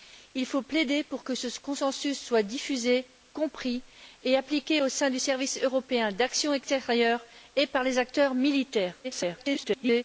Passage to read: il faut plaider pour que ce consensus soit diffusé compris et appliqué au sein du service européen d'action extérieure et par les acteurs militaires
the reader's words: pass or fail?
fail